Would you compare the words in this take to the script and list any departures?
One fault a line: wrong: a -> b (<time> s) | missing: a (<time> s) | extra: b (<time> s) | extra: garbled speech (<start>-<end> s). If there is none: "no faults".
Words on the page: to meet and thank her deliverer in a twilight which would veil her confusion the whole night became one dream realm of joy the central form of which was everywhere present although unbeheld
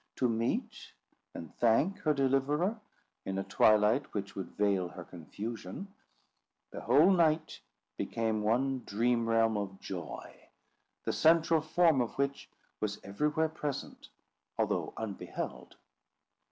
no faults